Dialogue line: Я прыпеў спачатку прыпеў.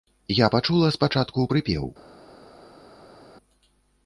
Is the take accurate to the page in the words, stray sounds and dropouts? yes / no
no